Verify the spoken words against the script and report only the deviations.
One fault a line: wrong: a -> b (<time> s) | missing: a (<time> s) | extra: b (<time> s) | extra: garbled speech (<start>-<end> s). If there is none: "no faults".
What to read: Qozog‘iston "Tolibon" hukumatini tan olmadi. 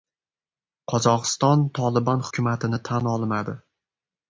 no faults